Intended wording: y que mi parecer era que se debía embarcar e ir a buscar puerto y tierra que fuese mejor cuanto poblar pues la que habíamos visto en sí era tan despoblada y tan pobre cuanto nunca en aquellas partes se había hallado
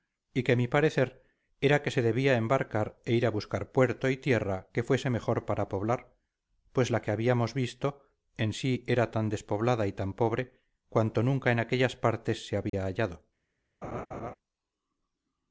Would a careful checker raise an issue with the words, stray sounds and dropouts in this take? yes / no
yes